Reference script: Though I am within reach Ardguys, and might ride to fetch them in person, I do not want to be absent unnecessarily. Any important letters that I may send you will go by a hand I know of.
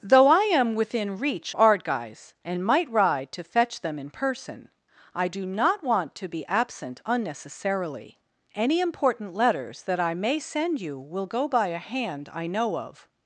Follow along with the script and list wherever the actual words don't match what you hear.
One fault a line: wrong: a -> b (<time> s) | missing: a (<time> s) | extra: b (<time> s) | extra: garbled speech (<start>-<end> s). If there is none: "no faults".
no faults